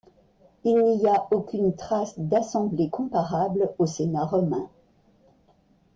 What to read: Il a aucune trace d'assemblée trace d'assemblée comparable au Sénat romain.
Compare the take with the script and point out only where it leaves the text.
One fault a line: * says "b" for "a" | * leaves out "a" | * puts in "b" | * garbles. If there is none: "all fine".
* puts in "n'y"
* leaves out "trace d'assemblée"